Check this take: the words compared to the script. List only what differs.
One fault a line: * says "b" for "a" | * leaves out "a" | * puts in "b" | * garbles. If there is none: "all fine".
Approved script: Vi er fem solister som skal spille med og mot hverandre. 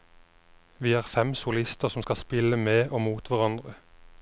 all fine